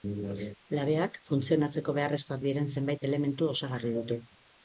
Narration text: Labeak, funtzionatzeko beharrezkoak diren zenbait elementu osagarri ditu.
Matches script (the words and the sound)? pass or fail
pass